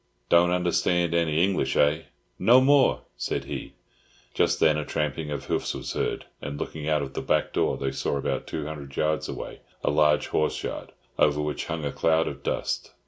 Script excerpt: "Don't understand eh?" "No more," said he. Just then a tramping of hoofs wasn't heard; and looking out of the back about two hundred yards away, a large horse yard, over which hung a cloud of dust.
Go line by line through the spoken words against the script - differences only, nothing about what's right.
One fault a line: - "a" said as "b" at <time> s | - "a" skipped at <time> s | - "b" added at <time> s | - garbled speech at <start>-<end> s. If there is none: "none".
- "any English" added at 1.1 s
- "wasn't" said as "was" at 5.8 s
- "door they saw" added at 7.5 s